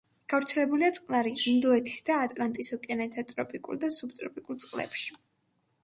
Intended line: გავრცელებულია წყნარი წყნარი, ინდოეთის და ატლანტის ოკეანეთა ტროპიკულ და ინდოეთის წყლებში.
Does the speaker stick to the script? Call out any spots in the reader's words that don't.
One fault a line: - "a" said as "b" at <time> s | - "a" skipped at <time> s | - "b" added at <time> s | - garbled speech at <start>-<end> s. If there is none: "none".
- "წყნარი" skipped at 1.3 s
- "ინდოეთის" said as "სუბტროპიკულ" at 4.0 s